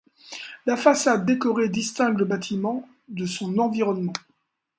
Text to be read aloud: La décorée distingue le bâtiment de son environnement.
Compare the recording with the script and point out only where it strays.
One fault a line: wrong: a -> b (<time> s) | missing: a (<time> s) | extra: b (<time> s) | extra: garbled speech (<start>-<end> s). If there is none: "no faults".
extra: façade (0.8 s)